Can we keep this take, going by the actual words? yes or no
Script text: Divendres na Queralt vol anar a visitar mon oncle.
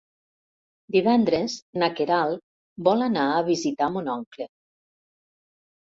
yes